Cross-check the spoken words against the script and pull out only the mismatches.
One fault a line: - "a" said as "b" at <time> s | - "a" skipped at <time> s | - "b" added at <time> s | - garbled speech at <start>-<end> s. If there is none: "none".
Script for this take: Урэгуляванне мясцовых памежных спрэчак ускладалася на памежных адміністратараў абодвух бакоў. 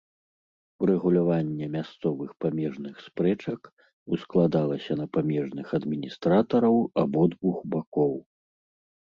none